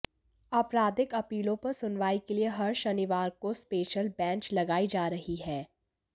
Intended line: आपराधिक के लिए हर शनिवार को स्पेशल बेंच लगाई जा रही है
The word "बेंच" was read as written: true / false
true